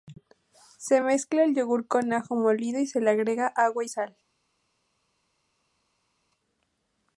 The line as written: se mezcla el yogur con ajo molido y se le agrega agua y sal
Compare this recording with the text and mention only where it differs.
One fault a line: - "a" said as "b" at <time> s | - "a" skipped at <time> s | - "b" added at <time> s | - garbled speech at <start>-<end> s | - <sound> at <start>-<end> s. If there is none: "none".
none